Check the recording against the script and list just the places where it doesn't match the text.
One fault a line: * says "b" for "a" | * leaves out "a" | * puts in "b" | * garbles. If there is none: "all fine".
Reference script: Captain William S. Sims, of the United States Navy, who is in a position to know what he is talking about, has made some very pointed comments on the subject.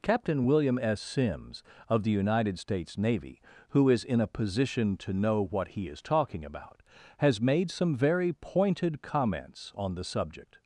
all fine